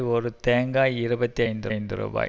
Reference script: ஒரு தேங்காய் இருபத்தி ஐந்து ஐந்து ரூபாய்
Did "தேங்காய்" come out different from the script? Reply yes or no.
no